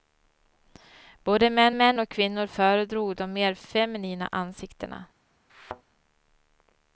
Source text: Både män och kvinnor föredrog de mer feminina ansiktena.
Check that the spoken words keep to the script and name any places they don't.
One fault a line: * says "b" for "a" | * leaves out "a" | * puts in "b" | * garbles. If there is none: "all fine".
* puts in "män"